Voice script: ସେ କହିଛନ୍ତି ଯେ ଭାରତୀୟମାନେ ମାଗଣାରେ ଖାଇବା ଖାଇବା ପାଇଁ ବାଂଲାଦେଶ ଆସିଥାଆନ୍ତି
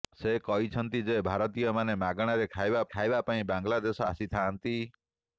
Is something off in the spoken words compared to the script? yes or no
no